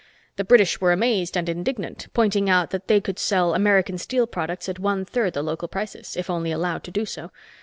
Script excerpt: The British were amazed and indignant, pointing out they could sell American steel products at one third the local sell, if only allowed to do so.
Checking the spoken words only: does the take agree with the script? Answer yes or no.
no